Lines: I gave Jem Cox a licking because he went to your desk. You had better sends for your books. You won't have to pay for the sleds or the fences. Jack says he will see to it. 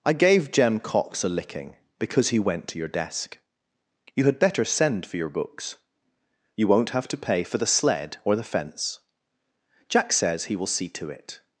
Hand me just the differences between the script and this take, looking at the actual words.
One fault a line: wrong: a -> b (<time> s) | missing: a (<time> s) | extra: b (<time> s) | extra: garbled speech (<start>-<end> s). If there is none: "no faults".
wrong: sends -> send (4.7 s)
wrong: sleds -> sled (7.7 s)
wrong: fences -> fence (8.4 s)